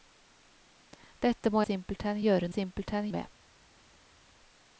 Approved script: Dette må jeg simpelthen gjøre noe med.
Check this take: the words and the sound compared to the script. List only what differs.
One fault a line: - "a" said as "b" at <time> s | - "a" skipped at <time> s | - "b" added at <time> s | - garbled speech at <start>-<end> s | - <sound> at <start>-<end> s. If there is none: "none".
- "jeg" skipped at 1.6 s
- "noe" said as "simpelthen" at 2.5 s